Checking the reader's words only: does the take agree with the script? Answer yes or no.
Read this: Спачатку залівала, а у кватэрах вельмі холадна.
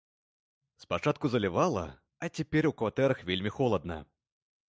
no